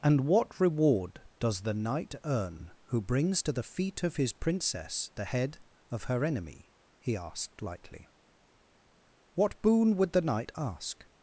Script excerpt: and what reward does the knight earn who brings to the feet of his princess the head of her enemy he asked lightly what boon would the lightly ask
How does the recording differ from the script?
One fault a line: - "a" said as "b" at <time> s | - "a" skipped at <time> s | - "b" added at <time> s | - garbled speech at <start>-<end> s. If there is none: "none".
- "lightly" said as "knight" at 10.2 s